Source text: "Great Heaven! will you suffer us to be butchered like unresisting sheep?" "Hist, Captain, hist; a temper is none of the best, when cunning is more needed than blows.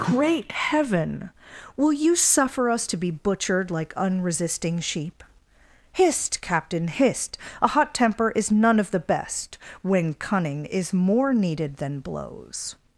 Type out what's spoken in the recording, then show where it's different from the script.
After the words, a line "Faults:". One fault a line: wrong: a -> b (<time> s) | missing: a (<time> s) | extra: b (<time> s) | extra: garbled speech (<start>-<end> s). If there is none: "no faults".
"Great Heaven! will you suffer us to be butchered like unresisting sheep?" "Hist, Captain, hist; a hot temper is none of the best, when cunning is more needed than blows.
Faults:
extra: hot (7.7 s)